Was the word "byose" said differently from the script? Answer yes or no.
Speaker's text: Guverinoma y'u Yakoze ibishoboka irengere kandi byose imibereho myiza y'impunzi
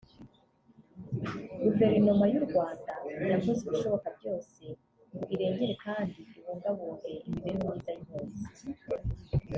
yes